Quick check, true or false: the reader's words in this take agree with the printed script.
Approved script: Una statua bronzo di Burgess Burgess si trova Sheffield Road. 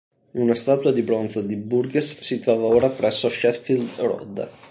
false